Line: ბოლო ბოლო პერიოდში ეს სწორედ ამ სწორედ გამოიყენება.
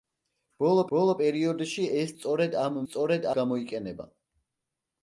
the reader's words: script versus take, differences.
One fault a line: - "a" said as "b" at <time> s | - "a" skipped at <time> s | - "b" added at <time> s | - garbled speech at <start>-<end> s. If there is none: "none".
none